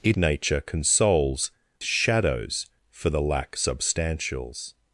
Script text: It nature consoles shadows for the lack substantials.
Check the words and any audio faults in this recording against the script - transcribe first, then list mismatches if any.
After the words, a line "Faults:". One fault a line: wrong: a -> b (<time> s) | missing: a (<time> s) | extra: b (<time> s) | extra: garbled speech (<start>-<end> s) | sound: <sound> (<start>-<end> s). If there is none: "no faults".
It nature consoles shadows for the lack substantials.
Faults:
no faults